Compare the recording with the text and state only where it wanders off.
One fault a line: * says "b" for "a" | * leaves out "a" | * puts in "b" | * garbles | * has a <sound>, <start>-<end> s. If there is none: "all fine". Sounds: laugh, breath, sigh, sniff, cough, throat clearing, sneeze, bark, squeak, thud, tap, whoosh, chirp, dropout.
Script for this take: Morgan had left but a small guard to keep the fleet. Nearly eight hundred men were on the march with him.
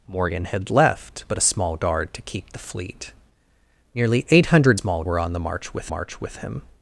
* says "small" for "men"
* puts in "march with"